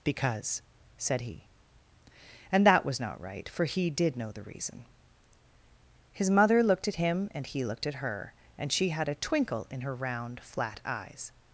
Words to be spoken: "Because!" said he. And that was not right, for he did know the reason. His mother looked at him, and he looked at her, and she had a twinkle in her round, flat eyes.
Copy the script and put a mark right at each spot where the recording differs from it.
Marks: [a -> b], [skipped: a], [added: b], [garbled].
"Because!" said he. And that was not right, for he did know the reason. His mother looked at him, and he looked at her, and she had a twinkle in her round, flat eyes.